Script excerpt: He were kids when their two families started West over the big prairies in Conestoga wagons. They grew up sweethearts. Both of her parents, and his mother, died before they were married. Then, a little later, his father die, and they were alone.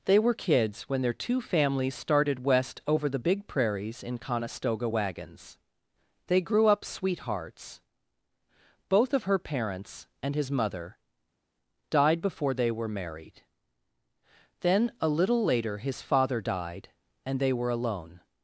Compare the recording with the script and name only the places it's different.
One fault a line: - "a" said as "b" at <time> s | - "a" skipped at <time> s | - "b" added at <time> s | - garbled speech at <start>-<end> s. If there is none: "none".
- "He" said as "They" at 0.1 s
- "die" said as "died" at 16.4 s